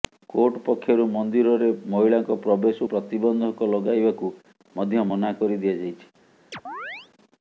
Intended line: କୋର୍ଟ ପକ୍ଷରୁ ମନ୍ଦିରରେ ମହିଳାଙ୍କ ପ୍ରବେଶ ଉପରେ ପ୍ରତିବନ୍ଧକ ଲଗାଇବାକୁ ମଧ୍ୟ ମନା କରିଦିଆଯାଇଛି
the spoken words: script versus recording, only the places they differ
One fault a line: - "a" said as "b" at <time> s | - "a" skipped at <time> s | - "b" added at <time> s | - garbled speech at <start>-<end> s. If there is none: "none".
- "ଉପରେ" skipped at 2.8 s